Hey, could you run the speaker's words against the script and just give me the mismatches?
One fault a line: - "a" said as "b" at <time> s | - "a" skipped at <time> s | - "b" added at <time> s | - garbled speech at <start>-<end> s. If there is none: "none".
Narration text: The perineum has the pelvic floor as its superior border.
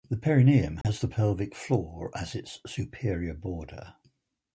none